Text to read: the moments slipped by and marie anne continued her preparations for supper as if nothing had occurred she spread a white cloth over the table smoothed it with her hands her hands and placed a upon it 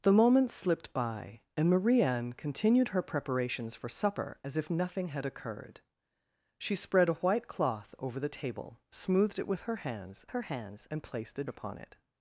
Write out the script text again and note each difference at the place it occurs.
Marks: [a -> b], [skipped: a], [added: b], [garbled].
the moments slipped by and marie anne continued her preparations for supper as if nothing had occurred she spread a white cloth over the table smoothed it with her hands her hands and placed a upon it